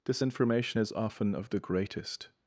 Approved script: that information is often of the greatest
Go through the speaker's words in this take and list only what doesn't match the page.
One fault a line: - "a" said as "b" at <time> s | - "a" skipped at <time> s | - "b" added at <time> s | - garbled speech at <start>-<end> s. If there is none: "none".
- "that" said as "this" at 0.1 s